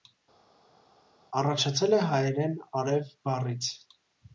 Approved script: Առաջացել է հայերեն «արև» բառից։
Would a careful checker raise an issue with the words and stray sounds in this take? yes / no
no